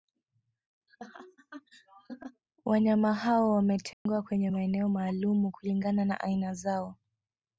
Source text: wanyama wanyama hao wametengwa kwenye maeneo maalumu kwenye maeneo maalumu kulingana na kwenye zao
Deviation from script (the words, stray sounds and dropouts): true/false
true